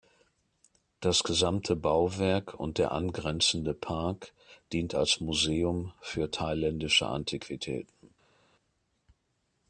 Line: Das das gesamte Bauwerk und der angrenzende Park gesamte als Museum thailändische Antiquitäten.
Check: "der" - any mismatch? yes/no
no